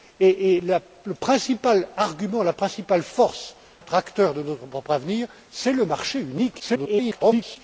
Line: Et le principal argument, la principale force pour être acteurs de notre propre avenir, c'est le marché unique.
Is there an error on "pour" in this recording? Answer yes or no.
yes